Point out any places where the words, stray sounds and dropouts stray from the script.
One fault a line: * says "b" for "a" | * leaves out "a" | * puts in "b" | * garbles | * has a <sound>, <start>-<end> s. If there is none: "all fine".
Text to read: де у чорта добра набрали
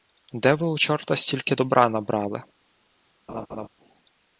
* puts in "ви"
* puts in "стільки"
* has a laugh, 3.3-3.7 s